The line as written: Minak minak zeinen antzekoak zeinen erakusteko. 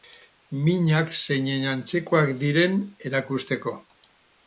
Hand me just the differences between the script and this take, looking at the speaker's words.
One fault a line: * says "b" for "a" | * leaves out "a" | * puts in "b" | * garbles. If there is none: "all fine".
* leaves out "minak"
* says "diren" for "zeinen"